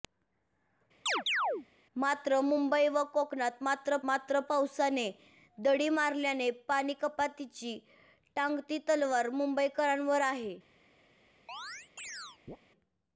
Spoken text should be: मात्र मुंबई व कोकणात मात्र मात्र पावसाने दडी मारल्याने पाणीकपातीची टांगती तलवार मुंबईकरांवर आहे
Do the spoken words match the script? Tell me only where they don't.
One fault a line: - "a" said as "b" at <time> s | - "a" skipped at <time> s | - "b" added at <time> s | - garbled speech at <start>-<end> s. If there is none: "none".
none